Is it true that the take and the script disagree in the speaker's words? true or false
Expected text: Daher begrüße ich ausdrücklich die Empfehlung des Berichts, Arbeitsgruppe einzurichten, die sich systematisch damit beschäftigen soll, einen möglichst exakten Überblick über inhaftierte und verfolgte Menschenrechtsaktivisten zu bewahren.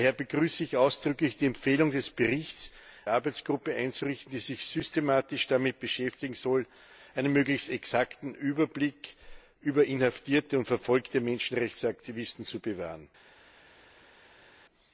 false